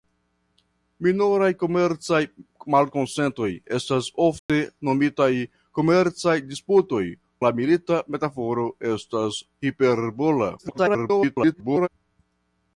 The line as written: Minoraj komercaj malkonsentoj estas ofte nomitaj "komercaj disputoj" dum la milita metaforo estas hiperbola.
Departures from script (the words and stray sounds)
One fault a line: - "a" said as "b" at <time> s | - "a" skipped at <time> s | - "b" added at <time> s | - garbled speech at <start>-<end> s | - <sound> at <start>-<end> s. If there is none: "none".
- dropout at 4.4-4.5 s
- "dum" skipped at 7.0 s
- garbled speech at 10.6-11.9 s